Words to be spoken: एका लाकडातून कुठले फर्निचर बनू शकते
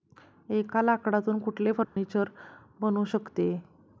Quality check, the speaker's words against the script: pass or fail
pass